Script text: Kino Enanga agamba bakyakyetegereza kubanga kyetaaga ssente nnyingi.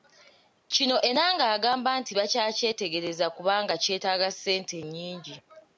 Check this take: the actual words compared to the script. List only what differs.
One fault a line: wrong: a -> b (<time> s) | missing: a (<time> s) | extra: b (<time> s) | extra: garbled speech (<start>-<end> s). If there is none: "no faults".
extra: nti (2.0 s)